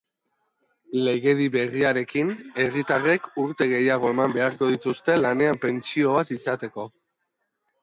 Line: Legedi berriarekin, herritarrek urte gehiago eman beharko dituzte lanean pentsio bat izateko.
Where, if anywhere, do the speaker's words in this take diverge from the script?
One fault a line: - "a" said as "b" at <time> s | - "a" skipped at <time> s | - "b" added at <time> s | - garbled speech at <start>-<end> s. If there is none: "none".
none